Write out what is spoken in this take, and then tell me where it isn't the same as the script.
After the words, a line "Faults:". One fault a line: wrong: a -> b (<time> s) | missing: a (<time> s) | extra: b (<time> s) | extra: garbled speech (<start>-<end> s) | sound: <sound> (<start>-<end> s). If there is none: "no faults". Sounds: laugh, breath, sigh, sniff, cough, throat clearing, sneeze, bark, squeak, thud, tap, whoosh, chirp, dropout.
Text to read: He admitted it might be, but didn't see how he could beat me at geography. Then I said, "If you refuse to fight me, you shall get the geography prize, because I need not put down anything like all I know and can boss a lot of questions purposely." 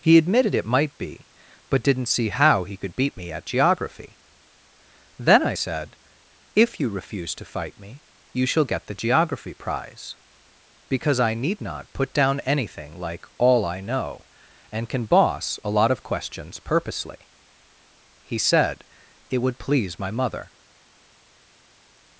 He admitted it might be, but didn't see how he could beat me at geography. Then I said, "If you refuse to fight me, you shall get the geography prize, because I need not put down anything like all I know and can boss a lot of questions purposely." He said, "It would please my mother
Faults:
extra: He said It would please my mother (18.2 s)